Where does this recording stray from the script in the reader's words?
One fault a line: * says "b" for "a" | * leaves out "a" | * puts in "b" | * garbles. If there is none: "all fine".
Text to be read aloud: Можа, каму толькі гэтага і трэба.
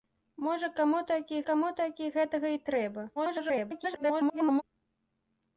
* puts in "каму толькі"
* garbles